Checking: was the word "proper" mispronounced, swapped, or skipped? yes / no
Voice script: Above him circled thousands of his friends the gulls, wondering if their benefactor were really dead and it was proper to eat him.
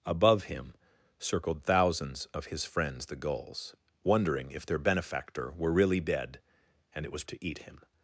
yes